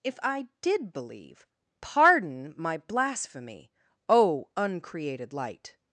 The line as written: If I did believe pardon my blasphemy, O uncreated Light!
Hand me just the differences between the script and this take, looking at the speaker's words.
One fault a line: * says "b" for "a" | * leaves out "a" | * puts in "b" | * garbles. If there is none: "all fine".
all fine